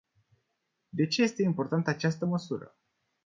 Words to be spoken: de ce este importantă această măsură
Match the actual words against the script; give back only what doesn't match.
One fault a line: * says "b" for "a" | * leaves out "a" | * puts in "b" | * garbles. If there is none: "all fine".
all fine